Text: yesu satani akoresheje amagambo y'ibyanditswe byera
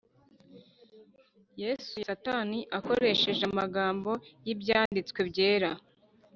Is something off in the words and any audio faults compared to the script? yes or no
yes